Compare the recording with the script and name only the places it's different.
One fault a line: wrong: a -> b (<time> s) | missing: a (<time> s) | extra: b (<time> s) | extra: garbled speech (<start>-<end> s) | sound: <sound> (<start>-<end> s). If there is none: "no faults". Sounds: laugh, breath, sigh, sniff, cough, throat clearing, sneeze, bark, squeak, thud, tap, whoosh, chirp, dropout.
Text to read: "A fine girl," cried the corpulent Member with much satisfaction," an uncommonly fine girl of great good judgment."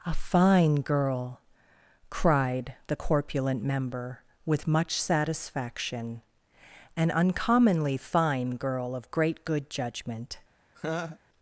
sound: laugh (10.7-11.2 s)